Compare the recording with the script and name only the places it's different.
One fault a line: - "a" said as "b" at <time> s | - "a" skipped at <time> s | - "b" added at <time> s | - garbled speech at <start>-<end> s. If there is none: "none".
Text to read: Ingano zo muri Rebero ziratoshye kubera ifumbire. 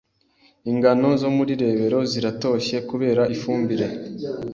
none